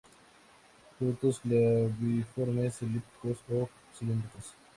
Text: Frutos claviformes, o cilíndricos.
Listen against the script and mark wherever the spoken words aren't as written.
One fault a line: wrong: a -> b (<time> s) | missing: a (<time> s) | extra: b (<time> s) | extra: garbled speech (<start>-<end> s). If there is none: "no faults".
extra: elípticos (2.8 s)